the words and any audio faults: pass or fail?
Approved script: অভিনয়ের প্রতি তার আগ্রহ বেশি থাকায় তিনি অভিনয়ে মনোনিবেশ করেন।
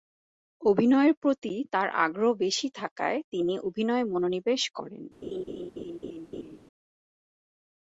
fail